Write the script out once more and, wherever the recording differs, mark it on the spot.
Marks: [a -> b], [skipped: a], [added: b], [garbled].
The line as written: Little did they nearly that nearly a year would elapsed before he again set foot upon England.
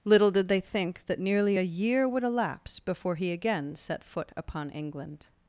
Little did they [nearly -> think] that nearly a year would [elapsed -> elapse] before he again set foot upon England.